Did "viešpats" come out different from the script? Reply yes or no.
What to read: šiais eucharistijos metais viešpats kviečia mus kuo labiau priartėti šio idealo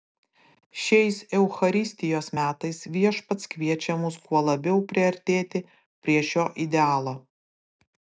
no